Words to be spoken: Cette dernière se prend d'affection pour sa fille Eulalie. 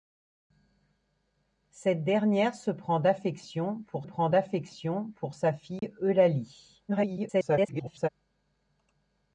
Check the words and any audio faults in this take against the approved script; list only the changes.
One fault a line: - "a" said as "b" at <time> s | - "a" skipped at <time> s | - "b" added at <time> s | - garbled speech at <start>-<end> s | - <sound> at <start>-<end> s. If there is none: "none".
- "prend d'affection pour" added at 4.0 s
- dropout at 5.8-5.8 s
- garbled speech at 6.9-8.1 s